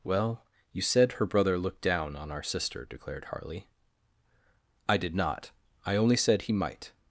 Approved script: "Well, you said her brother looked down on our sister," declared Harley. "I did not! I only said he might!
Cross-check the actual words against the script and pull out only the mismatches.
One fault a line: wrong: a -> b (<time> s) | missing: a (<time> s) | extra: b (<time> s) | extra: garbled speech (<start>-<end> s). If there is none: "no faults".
no faults